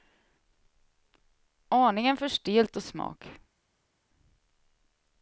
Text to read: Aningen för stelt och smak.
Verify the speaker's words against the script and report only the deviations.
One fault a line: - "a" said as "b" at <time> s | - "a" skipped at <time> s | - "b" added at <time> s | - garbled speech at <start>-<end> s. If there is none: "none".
none